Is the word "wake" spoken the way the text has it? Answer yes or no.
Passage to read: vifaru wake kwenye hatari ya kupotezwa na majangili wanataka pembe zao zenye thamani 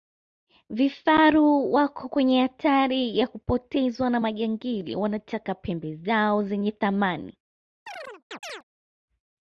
no